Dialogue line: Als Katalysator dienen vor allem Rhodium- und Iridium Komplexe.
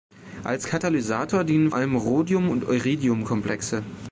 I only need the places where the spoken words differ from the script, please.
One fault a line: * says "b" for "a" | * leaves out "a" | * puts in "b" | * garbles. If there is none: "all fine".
* leaves out "vor"